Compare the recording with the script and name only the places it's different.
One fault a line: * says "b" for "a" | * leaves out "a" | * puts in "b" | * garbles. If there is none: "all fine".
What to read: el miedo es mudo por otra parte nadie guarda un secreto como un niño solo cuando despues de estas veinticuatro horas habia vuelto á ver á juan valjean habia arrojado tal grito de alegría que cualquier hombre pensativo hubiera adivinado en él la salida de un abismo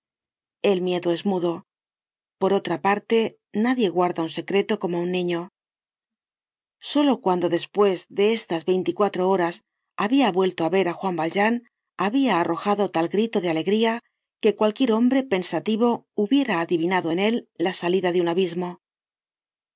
all fine